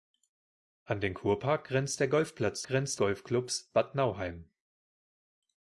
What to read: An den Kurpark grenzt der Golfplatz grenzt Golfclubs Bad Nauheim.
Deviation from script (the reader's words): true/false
false